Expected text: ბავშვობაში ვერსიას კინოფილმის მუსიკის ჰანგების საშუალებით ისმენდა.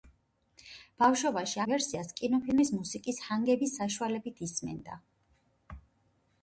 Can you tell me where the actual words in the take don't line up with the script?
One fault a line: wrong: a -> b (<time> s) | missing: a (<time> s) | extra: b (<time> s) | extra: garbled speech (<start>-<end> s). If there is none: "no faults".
no faults